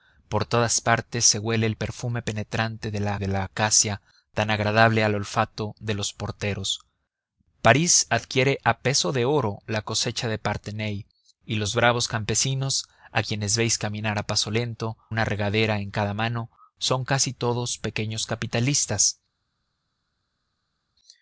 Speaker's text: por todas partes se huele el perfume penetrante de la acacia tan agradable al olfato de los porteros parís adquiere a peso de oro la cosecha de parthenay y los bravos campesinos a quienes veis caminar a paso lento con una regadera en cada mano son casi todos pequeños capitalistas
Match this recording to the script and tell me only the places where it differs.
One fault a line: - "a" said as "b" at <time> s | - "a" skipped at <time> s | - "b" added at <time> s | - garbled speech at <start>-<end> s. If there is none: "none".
- "de la" added at 3.2 s
- "con" skipped at 15.0 s